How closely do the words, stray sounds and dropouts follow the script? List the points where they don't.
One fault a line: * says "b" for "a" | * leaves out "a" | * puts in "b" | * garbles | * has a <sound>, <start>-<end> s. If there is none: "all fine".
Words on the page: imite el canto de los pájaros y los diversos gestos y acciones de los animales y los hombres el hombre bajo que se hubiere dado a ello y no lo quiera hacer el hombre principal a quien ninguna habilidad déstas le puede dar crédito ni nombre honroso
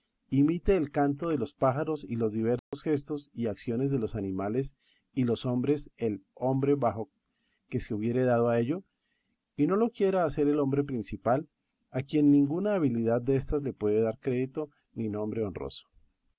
* has a dropout, 2.6-2.7 s